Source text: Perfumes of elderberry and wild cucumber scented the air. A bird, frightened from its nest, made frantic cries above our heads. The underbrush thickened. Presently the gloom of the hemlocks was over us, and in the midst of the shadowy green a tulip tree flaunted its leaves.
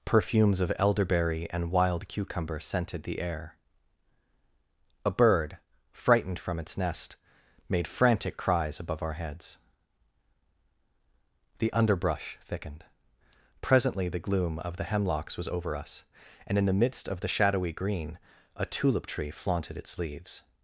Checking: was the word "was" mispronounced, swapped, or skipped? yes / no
no